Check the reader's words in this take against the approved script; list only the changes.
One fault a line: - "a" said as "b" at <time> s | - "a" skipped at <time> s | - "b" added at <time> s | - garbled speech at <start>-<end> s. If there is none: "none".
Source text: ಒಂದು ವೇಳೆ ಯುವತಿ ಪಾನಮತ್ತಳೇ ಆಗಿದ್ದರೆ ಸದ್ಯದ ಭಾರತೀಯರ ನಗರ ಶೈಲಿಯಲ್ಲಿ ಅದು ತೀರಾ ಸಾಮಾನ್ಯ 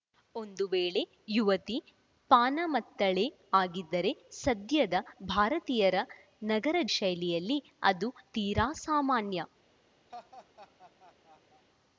none